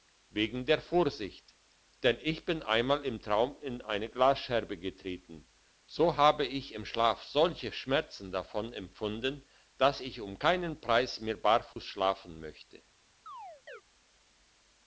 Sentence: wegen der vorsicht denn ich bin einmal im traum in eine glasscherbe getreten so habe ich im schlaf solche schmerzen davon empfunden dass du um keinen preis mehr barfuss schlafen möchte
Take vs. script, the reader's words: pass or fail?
fail